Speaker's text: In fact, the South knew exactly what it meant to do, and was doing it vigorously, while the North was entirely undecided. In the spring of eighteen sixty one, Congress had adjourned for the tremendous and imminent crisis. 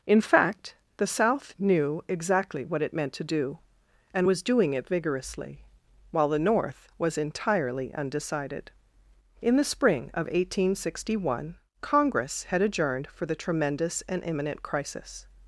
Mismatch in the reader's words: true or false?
false